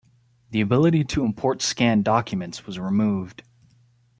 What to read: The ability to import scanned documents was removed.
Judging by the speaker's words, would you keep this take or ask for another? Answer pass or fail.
pass